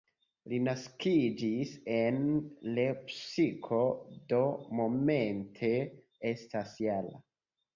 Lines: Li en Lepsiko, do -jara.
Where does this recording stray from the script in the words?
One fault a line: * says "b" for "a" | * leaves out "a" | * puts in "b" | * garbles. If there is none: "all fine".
* puts in "naskiĝis"
* puts in "momente estas"